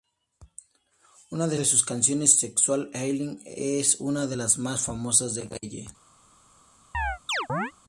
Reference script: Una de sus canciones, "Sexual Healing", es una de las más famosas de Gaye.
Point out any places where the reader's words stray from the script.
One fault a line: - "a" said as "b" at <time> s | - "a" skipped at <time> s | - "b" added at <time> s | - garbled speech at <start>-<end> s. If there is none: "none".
- "de" added at 1.5 s